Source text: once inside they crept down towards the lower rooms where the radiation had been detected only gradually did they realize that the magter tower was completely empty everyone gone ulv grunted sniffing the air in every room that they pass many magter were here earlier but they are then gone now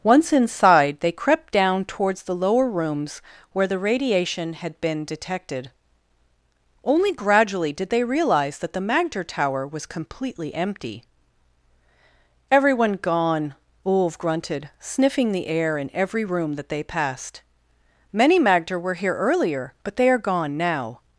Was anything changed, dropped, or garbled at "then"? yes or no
yes